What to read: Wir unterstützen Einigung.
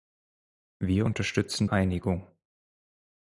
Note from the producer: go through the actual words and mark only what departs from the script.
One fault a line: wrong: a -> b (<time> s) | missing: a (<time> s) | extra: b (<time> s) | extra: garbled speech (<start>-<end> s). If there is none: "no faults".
no faults